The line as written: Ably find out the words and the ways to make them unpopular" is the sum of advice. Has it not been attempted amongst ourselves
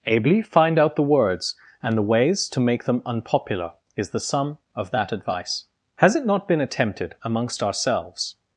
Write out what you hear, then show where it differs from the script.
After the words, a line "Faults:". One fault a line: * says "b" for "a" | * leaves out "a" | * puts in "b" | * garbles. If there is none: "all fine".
Ably find out the words and the ways to make them unpopular" is the sum of that advice. Has it not been attempted amongst ourselves
Faults:
* puts in "that"